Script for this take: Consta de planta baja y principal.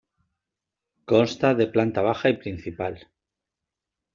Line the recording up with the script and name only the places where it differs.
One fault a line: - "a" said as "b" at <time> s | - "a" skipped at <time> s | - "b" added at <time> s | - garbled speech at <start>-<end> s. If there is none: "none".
none